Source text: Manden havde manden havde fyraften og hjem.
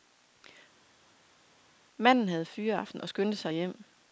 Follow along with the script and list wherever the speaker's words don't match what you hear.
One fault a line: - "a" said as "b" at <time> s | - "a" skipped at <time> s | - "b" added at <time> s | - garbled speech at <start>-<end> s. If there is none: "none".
- "manden havde fyraften og" said as "fyraften og skyndte sig" at 2.5 s